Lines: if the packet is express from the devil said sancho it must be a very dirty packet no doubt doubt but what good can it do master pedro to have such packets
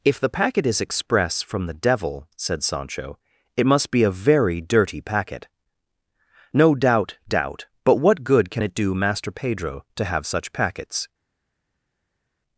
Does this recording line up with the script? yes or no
yes